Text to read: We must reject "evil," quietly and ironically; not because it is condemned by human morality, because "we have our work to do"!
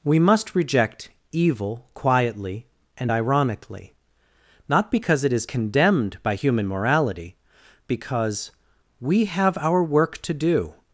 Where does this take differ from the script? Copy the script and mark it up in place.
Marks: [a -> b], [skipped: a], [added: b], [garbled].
We must reject "evil," quietly and ironically; not because it is condemned by human morality, because "we have our work to do"!